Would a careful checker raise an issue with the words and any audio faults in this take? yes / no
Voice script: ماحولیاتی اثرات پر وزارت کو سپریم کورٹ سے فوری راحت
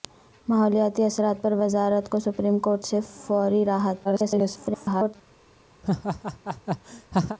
yes